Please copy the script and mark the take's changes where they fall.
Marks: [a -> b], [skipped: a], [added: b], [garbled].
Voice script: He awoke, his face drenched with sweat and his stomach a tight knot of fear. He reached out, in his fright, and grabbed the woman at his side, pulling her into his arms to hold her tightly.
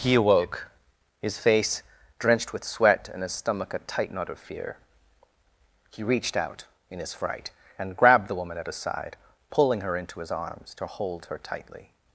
He awoke, his face drenched with sweat and his stomach a tight knot of fear. He reached out, in his fright, and grabbed the woman at his side, pulling her into his arms to hold her tightly.